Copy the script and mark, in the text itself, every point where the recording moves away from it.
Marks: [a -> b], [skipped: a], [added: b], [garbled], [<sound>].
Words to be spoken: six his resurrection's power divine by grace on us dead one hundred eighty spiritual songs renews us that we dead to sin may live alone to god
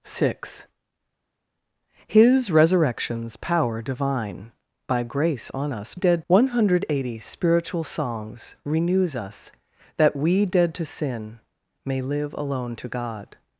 six his resurrection's power divine by grace on us dead one hundred eighty spiritual songs renews us that we dead to sin may live alone to god